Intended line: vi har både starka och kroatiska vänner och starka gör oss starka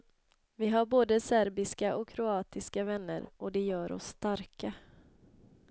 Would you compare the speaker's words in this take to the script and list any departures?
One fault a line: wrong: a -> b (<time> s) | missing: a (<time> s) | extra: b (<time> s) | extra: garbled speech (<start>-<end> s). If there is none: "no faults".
wrong: starka -> serbiska (1.2 s)
wrong: starka -> det (3.5 s)